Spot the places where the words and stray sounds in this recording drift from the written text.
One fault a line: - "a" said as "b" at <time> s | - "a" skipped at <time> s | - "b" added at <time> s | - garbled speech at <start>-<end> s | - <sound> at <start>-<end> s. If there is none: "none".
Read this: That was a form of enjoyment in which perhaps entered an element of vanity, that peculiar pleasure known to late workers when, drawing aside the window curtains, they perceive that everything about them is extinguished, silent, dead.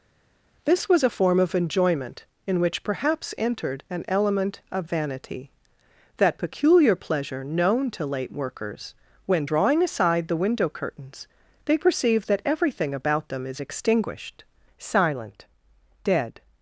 - "That" said as "This" at 0.6 s